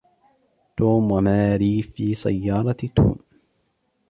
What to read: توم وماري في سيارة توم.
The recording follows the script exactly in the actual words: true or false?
true